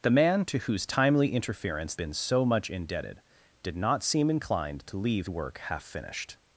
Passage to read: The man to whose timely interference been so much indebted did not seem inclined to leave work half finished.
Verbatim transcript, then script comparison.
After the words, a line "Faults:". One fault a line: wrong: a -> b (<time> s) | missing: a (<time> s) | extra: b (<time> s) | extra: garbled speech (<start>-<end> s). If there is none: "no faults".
The man to whose timely interference been so much indebted did not seem inclined to leave work half finished.
Faults:
no faults